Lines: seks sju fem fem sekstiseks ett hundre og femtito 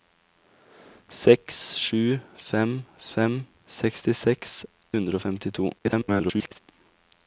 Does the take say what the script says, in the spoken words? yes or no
no